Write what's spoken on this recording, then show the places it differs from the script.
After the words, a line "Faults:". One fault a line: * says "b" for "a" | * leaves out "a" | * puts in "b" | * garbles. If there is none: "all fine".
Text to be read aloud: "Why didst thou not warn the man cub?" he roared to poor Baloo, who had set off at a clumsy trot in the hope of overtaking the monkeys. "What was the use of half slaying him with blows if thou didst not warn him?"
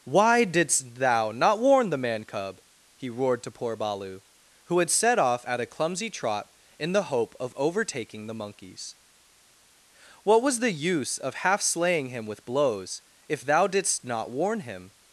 "Why didst thou not warn the man cub?" he roared to poor Baloo, who had set off at a clumsy trot in the hope of overtaking the monkeys. "What was the use of half slaying him with blows if thou didst not warn him?"
Faults:
all fine